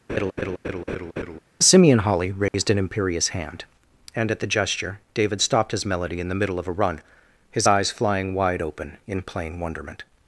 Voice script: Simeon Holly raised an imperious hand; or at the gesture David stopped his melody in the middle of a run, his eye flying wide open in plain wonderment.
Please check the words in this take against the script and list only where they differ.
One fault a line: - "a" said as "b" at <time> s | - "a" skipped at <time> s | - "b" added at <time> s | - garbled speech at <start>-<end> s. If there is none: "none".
- "or" said as "and" at 4.2 s
- "eye" said as "eyes" at 7.6 s